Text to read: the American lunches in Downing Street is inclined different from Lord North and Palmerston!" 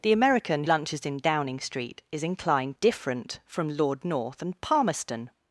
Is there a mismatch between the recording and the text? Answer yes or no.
no